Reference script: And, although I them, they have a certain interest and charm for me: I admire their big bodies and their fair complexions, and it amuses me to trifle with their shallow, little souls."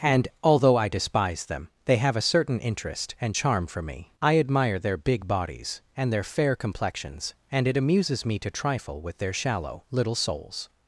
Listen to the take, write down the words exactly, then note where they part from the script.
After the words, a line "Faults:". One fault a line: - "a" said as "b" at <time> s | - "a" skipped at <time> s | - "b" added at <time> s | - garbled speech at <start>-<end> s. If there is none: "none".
And, although I despise them, they have a certain interest and charm for me: I admire their big bodies and their fair complexions, and it amuses me to trifle with their shallow, little souls."
Faults:
- "despise" added at 0.9 s